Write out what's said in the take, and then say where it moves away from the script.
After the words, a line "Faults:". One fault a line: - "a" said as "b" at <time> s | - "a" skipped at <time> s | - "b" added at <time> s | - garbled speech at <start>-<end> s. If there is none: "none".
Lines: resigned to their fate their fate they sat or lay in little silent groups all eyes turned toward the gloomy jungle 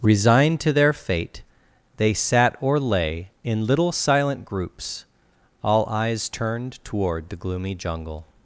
resigned to their fate they sat or lay in little silent groups all eyes turned toward the gloomy jungle
Faults:
- "their fate" skipped at 1.4 s